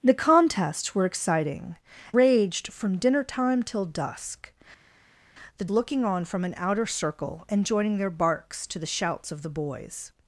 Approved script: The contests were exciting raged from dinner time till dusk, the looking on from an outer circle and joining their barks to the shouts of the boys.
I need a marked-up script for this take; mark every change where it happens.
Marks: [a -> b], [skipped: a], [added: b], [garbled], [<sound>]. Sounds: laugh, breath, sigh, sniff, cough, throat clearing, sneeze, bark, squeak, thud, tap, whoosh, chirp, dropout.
The contests were exciting raged from dinner time till dusk, the looking on from an outer circle and joining their barks to the shouts of the boys.